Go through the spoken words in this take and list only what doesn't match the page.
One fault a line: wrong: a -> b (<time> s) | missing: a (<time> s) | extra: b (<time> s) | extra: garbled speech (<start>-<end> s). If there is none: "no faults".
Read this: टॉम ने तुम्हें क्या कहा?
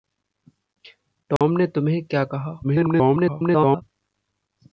extra: garbled speech (2.6-3.8 s)